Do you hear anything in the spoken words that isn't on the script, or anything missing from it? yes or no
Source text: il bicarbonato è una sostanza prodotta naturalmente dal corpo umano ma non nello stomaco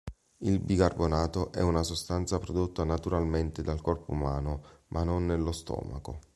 no